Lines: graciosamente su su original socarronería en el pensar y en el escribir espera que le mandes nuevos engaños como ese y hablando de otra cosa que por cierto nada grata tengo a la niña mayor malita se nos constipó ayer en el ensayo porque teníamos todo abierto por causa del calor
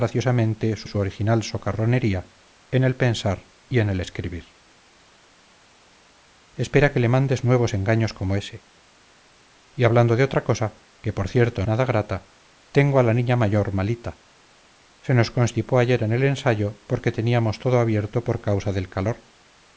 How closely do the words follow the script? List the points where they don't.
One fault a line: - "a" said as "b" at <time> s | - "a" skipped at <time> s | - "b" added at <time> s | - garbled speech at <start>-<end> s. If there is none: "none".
none